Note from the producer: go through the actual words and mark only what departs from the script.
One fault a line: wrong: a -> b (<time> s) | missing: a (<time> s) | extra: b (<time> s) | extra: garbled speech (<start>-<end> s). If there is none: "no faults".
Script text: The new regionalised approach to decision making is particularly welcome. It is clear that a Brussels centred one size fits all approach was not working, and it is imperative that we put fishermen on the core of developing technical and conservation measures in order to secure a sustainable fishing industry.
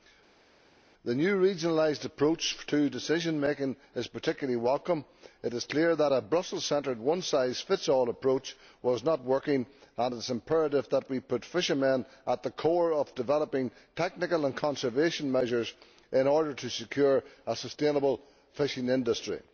wrong: on -> at (12.2 s)